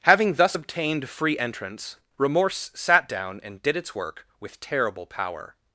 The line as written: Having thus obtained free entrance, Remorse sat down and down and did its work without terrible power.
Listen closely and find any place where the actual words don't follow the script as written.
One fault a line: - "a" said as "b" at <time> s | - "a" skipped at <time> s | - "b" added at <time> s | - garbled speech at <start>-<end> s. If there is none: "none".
- "down and" skipped at 3.6 s
- "without" said as "with" at 4.4 s